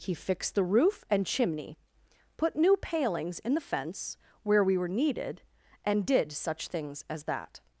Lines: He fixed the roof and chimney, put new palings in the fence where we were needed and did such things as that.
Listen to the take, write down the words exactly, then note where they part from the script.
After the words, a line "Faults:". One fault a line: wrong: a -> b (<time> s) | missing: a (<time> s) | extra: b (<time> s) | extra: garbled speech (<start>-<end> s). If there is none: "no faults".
He fixed the roof and chimney, put new palings in the fence where we were needed and did such things as that.
Faults:
no faults